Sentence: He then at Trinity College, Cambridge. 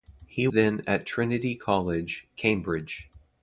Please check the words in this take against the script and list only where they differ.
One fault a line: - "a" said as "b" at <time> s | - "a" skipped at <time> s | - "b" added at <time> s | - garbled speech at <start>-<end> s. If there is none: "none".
none